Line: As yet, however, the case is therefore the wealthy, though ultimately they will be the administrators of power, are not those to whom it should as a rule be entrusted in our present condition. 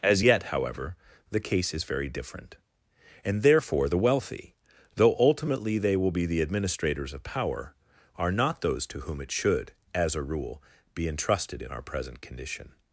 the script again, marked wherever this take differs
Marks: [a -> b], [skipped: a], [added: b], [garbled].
As yet, however, the case is [added: very different and] therefore the wealthy, though ultimately they will be the administrators of power, are not those to whom it should as a rule be entrusted in our present condition.